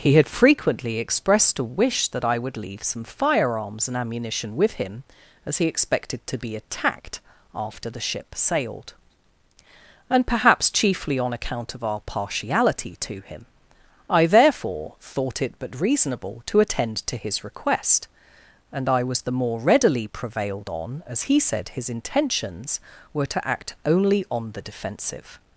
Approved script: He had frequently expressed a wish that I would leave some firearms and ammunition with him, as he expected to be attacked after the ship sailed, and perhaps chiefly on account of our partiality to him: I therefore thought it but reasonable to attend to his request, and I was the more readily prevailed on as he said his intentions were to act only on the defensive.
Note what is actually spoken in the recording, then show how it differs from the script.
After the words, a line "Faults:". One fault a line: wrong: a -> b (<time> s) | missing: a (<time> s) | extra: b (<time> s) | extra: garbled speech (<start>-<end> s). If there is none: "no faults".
He had frequently expressed a wish that I would leave some firearms and ammunition with him, as he expected to be attacked after the ship sailed, and perhaps chiefly on account of our partiality to him: I therefore thought it but reasonable to attend to his request, and I was the more readily prevailed on as he said his intentions were to act only on the defensive.
Faults:
no faults